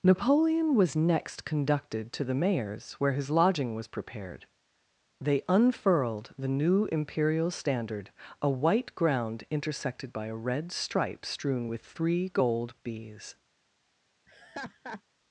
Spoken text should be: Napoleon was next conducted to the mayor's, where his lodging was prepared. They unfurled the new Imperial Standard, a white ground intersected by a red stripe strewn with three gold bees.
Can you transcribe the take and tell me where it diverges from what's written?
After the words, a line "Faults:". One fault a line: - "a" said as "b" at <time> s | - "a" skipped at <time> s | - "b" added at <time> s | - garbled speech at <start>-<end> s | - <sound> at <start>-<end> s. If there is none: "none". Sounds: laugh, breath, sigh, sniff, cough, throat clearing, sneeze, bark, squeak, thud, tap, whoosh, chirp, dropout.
Napoleon was next conducted to the mayor's, where his lodging was prepared. They unfurled the new Imperial Standard, a white ground intersected by a red stripe strewn with three gold bees.
Faults:
- laugh at 14.3-15.0 s